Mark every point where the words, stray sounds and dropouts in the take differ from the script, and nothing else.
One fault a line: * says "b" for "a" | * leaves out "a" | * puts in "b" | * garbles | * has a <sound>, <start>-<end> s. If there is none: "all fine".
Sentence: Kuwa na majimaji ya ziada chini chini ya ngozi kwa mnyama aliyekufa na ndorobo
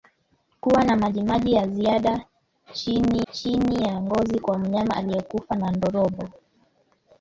all fine